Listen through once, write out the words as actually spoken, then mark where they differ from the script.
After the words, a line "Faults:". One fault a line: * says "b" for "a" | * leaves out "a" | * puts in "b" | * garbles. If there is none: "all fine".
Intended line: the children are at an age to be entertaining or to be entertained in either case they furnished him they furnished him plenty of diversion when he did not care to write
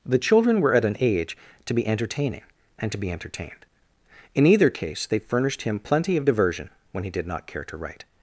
the children were at an age to be entertaining and to be entertained in either case they furnished him plenty of diversion when he did not care to write
Faults:
* says "were" for "are"
* says "and" for "or"
* leaves out "they furnished him"